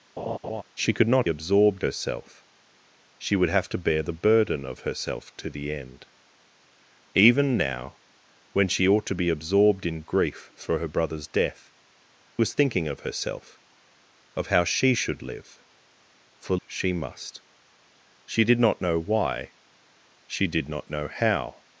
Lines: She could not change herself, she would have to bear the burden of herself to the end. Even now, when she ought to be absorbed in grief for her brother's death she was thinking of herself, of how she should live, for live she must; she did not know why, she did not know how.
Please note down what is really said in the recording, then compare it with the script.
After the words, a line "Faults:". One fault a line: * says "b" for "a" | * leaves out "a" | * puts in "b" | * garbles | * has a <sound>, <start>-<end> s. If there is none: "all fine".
She could not absorbed herself, she would have to bear the burden of herself to the end. Even now, when she ought to be absorbed in grief for her brother's death was thinking of herself, of how she should live, for she must; she did not know why, she did not know how.
Faults:
* has a laugh, 0.2-0.6 s
* says "absorbed" for "change"
* leaves out "she"
* leaves out "live"